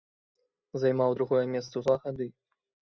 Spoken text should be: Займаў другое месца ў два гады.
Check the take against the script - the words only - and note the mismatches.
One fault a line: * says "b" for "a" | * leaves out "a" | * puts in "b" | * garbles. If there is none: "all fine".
all fine